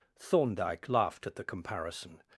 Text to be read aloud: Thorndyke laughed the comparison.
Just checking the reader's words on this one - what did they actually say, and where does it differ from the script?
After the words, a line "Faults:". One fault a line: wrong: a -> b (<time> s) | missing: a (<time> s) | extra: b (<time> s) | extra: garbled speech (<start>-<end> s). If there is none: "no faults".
Thorndyke laughed at the comparison.
Faults:
extra: at (1.3 s)